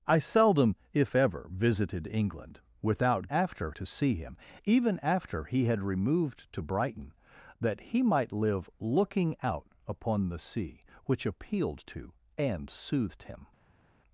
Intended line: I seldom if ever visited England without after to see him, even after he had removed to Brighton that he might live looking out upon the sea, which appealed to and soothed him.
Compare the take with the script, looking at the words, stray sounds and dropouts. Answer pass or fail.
pass